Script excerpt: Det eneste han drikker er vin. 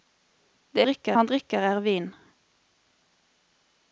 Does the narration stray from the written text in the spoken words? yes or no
yes